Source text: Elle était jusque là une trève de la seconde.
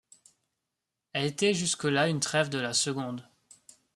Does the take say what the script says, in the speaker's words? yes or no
yes